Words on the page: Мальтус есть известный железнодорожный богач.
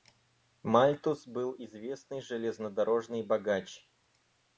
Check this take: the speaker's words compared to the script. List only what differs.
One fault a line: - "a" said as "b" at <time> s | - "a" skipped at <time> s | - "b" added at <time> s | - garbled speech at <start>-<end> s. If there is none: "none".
- "есть" said as "был" at 1.3 s